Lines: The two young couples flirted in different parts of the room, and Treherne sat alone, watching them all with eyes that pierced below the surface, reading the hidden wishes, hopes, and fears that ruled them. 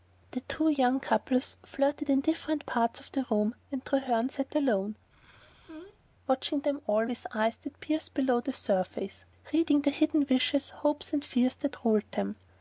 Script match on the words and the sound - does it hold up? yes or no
no